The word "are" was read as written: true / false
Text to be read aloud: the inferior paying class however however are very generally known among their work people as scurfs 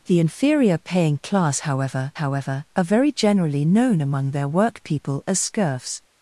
true